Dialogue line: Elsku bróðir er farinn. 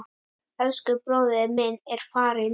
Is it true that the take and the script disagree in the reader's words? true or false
true